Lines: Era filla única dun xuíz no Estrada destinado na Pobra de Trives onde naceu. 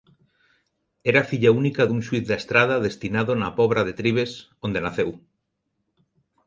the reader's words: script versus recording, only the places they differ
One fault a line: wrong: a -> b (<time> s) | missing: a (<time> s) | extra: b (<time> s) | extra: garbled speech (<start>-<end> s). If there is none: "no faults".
wrong: no -> da (2.3 s)